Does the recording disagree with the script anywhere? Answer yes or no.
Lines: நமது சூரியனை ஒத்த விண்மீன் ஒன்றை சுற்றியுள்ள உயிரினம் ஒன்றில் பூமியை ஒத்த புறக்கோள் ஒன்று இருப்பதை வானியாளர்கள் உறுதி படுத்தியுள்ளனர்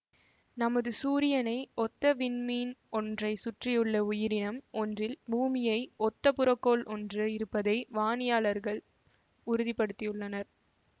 no